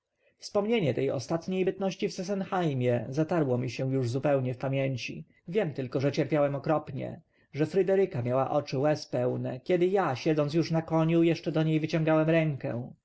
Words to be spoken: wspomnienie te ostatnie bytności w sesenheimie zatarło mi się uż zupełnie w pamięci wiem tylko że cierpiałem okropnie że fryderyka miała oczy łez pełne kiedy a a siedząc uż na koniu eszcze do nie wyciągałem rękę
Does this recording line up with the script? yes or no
no